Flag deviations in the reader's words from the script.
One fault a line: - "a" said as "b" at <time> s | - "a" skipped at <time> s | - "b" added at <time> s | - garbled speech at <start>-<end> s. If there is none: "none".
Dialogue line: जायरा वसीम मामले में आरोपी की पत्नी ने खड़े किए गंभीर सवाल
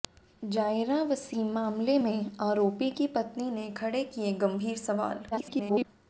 - garbled speech at 5.3-5.8 s